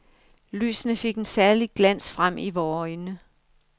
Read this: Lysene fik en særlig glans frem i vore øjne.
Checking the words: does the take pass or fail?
pass